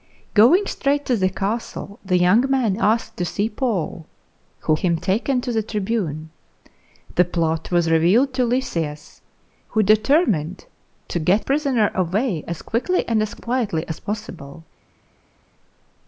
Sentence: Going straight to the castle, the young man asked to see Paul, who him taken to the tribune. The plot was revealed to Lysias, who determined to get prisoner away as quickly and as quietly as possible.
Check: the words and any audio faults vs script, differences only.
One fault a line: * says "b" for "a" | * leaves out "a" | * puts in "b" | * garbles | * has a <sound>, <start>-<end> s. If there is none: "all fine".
all fine